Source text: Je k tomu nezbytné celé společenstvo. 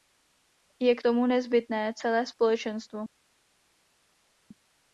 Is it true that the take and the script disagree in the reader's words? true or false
false